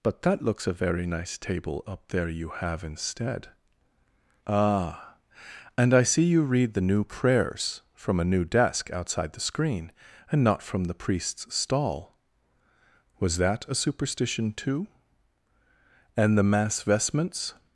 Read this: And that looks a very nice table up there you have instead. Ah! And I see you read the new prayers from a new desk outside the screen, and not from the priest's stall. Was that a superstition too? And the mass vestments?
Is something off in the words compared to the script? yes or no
yes